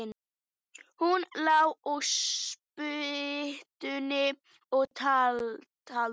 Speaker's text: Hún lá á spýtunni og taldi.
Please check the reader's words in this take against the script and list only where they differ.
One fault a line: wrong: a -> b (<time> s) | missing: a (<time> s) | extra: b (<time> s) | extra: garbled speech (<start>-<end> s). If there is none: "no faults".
no faults